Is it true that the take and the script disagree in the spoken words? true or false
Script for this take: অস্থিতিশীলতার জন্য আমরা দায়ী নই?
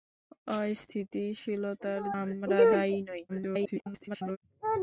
true